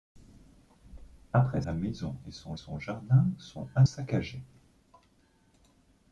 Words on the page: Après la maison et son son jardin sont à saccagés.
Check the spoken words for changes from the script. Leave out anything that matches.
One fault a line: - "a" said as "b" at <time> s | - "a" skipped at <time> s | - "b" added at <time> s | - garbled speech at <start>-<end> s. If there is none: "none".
none